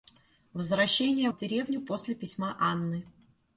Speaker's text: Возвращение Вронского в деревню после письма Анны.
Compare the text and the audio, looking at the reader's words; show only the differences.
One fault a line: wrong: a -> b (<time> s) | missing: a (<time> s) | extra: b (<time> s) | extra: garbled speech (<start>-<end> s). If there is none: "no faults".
missing: Вронского (1.3 s)